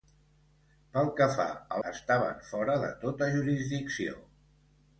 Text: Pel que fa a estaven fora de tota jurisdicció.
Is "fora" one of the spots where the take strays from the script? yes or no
no